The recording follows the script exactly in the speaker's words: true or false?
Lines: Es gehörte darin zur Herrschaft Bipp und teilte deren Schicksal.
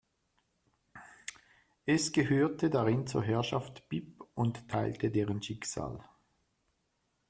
true